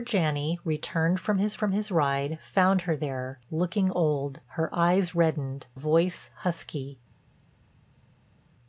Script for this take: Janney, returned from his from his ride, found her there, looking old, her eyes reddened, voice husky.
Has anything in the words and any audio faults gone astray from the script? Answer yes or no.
no